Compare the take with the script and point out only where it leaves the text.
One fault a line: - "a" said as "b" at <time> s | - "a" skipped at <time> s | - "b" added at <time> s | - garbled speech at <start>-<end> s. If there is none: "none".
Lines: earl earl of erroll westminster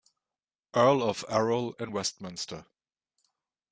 - "earl" skipped at 1.0 s
- "in" added at 1.8 s